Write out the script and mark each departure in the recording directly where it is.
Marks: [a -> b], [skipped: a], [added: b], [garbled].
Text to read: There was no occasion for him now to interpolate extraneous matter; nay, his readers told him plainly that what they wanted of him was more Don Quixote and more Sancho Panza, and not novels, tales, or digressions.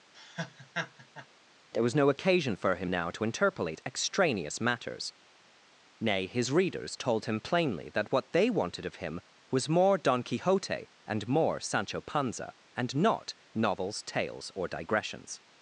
There was no occasion for him now to interpolate extraneous [matter; -> matters] nay, his readers told him plainly that what they wanted of him was more Don Quixote and more Sancho Panza, and not novels, tales, or digressions.